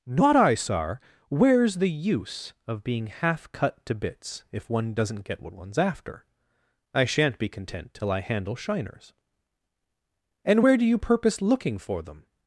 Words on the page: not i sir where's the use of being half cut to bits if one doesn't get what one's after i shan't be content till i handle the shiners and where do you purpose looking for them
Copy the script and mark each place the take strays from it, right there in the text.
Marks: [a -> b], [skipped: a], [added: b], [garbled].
not i sir where's the use of being half cut to bits if one doesn't get what one's after i shan't be content till i handle [skipped: the] shiners and where do you purpose looking for them